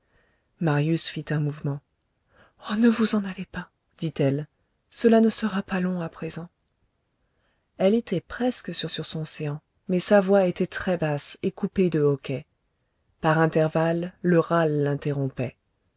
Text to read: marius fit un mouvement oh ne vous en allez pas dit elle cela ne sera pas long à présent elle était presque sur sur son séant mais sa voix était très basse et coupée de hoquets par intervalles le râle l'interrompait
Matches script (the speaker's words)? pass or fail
pass